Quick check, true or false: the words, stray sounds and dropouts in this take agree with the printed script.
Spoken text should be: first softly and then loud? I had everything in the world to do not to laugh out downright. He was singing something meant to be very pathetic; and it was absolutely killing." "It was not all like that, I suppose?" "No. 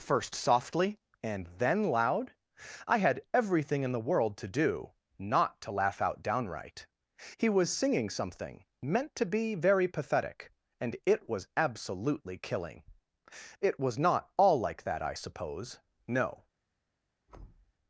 false